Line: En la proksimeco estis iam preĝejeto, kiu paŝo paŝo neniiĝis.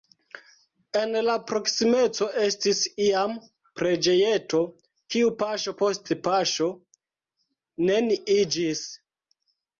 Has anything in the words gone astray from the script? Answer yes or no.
yes